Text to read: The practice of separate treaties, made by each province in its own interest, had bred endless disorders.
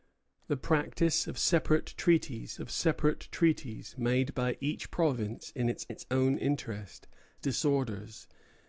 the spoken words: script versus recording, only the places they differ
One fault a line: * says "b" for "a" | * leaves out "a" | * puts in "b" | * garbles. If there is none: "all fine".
* puts in "of separate treaties"
* puts in "its"
* leaves out "had bred endless"